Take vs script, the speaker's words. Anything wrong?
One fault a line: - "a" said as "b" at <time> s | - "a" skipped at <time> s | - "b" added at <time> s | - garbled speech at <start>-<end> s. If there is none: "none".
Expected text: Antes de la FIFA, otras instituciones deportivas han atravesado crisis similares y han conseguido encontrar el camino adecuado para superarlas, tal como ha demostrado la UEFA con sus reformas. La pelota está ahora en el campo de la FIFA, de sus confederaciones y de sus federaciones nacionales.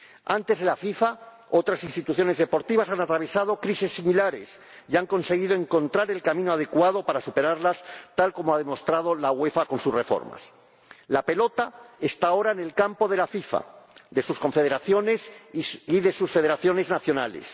none